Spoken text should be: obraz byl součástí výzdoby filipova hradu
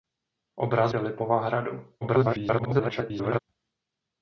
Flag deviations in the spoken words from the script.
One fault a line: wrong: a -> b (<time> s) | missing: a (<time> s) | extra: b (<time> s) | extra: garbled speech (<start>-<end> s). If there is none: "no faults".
missing: byl součástí výzdoby (0.9 s)
extra: garbled speech (2.0-3.4 s)